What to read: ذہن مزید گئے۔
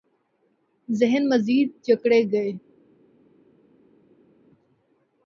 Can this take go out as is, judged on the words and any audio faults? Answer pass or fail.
fail